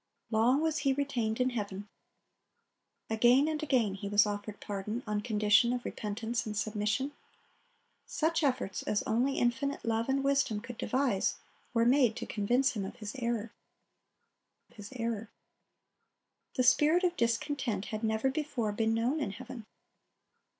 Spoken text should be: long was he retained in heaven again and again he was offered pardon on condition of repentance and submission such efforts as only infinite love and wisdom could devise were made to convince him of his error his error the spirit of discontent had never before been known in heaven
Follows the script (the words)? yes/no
yes